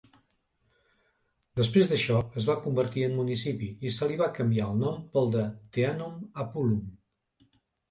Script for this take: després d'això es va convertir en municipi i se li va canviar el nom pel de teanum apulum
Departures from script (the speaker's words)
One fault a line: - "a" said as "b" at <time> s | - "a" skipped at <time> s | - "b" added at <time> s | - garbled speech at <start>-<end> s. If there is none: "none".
none